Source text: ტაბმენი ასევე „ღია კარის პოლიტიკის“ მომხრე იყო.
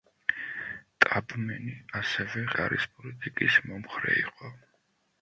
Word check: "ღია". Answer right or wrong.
wrong